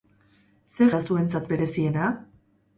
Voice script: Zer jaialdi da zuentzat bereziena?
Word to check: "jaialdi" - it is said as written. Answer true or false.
false